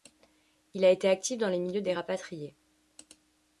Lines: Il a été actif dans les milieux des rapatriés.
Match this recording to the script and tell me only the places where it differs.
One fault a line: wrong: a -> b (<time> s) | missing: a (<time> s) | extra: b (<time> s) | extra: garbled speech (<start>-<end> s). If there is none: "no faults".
no faults